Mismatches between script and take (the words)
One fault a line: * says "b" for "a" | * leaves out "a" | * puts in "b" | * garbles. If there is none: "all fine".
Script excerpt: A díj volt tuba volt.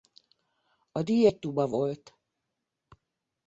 * says "egy" for "volt"